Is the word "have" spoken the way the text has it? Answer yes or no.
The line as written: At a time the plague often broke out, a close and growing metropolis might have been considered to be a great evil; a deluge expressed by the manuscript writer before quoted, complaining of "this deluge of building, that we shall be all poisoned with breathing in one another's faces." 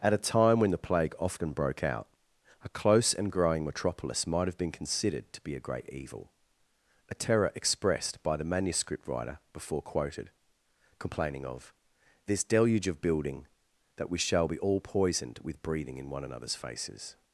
yes